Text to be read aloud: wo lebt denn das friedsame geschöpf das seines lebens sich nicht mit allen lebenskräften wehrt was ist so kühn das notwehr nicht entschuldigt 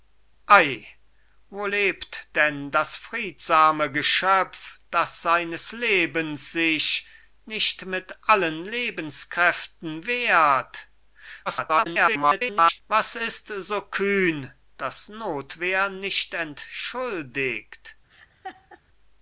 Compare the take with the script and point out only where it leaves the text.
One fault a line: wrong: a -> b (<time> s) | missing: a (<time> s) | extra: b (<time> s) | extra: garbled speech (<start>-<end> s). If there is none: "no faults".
extra: garbled speech (11.5-12.8 s)